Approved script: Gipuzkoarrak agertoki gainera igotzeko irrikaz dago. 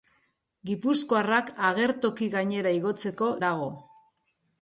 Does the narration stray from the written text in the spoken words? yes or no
yes